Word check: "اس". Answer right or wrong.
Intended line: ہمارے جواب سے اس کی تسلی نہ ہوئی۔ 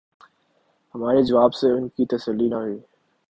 wrong